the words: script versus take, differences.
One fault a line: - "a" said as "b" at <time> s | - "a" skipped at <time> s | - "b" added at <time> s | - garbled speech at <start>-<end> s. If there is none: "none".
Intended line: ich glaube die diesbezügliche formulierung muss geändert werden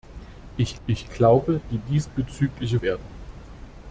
- "ich" added at 0.9 s
- "formulierung muss geändert" skipped at 2.8 s